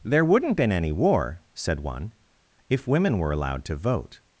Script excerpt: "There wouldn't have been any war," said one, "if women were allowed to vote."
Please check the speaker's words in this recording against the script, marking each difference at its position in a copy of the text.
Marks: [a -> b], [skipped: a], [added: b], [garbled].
"There wouldn't [skipped: have] been any war," said one, "if women were allowed to vote."